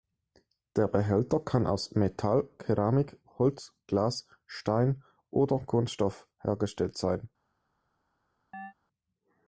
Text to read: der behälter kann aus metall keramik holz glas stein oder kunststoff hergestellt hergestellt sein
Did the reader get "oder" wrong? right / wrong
right